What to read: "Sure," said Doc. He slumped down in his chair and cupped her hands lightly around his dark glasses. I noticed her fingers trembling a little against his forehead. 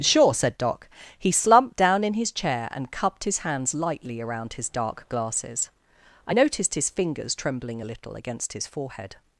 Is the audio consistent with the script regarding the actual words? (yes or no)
no